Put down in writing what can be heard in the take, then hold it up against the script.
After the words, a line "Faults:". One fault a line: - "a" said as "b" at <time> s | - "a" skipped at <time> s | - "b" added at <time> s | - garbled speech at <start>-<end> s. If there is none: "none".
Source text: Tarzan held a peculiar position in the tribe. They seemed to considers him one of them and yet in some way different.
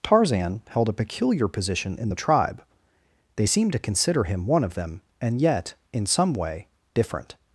Tarzan held a peculiar position in the tribe. They seemed to consider him one of them and yet in some way different.
Faults:
- "considers" said as "consider" at 3.8 s